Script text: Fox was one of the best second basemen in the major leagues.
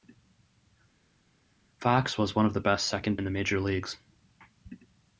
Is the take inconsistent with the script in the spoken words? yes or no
yes